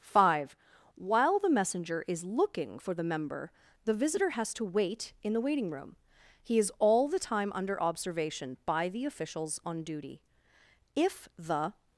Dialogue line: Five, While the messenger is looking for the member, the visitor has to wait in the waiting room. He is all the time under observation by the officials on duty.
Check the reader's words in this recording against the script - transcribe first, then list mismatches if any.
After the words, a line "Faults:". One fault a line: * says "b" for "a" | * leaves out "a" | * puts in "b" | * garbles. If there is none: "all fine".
Five, While the messenger is looking for the member, the visitor has to wait in the waiting room. He is all the time under observation by the officials on duty. If the.
Faults:
* puts in "If the"